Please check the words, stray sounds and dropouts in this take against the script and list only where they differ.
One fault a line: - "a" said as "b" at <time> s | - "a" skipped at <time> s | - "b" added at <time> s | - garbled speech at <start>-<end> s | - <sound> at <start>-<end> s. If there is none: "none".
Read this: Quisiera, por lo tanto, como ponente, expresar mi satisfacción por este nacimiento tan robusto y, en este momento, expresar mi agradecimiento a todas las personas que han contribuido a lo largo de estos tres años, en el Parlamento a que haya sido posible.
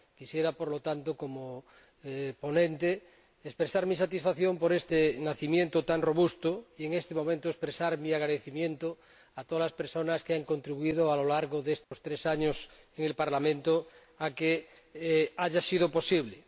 - dropout at 11.8-11.9 s